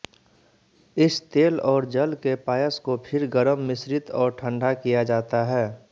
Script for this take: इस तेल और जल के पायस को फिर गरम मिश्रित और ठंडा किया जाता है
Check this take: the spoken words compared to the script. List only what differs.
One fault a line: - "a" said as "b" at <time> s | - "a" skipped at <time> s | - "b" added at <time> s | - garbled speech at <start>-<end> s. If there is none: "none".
none